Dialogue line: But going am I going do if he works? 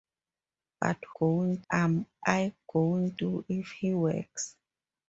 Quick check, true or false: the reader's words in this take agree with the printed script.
true